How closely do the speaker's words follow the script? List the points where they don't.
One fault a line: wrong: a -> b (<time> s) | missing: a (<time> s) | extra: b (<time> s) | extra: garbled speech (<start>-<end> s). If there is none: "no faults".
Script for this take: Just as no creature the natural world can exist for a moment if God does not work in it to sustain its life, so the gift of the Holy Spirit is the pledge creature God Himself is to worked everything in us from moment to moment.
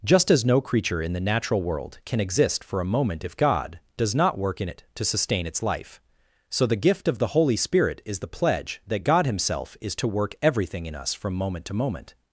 extra: in (1.0 s)
wrong: creature -> that (8.9 s)
wrong: worked -> work (10.1 s)